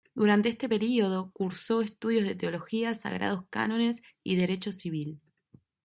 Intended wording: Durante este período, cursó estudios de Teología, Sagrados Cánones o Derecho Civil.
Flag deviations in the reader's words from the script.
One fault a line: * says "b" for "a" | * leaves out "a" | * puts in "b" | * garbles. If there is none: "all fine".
* says "y" for "o"